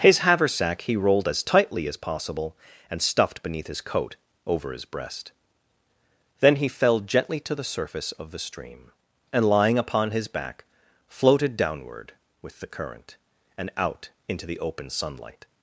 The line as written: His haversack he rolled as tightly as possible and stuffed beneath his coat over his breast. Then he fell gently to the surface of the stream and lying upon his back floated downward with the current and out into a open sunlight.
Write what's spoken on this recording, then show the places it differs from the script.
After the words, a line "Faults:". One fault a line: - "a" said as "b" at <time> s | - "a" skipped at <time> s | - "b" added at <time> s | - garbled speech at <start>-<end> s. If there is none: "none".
His haversack he rolled as tightly as possible and stuffed beneath his coat over his breast. Then he fell gently to the surface of the stream and lying upon his back floated downward with the current and out into the open sunlight.
Faults:
- "a" said as "the" at 14.5 s